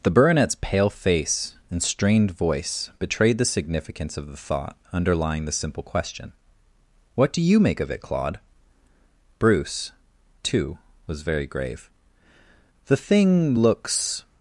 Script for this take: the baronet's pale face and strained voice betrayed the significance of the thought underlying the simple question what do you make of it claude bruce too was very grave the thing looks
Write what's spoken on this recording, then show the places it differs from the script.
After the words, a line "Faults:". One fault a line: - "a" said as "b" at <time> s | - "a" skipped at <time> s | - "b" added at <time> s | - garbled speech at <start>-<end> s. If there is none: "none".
the baronet's pale face and strained voice betrayed the significance of the thought underlying the simple question what do you make of it claude bruce too was very grave the thing looks
Faults:
none